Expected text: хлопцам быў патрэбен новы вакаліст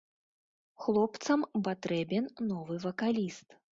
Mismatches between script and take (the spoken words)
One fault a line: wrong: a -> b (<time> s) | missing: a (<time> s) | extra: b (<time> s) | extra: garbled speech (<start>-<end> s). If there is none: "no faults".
missing: быў (1.4 s)